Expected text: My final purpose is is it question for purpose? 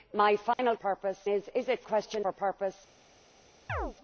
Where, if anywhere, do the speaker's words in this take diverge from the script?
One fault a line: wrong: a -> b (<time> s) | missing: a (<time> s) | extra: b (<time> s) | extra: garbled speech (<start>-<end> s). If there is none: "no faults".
no faults